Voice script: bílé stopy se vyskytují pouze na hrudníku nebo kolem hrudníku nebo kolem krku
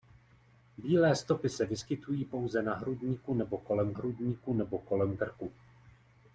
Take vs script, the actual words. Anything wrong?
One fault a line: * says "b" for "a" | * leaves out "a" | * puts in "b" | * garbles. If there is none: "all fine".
all fine